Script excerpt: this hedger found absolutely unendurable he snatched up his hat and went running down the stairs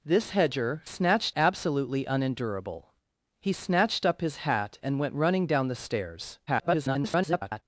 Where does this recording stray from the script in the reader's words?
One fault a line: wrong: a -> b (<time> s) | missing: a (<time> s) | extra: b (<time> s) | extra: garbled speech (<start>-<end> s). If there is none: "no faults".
wrong: found -> snatched (0.8 s)
extra: garbled speech (6.5-7.6 s)